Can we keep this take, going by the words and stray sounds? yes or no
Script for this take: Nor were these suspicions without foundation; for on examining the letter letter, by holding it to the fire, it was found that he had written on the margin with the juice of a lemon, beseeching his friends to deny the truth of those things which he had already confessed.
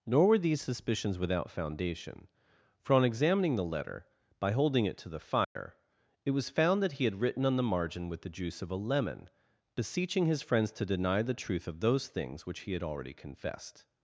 no